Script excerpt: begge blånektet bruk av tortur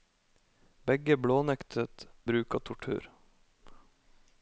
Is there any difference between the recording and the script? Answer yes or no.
no